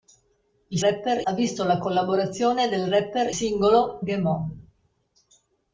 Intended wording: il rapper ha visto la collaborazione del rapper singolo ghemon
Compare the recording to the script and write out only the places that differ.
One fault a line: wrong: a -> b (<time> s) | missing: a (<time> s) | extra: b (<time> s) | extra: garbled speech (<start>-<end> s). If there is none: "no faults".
no faults